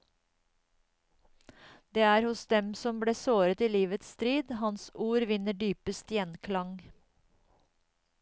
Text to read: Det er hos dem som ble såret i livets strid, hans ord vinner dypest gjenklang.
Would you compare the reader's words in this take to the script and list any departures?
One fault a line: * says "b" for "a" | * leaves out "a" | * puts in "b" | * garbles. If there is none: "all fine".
all fine